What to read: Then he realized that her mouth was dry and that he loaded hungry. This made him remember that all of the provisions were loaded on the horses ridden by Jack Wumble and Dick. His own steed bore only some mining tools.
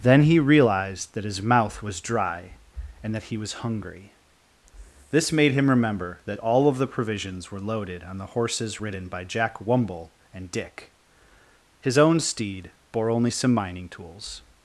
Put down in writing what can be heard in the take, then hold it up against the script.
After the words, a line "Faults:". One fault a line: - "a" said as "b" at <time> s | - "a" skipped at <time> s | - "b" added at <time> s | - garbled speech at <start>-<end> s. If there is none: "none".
Then he realized that his mouth was dry and that he was hungry. This made him remember that all of the provisions were loaded on the horses ridden by Jack Wumble and Dick. His own steed bore only some mining tools.
Faults:
- "her" said as "his" at 1.2 s
- "loaded" said as "was" at 3.4 s